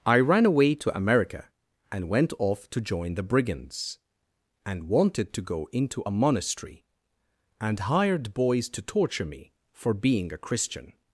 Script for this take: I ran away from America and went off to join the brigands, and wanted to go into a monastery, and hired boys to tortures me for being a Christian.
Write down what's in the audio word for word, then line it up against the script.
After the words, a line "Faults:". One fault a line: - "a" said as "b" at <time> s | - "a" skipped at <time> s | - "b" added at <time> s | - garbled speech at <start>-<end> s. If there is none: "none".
I ran away to America and went off to join the brigands, and wanted to go into a monastery, and hired boys to torture me for being a Christian.
Faults:
- "from" said as "to" at 0.7 s
- "tortures" said as "torture" at 8.8 s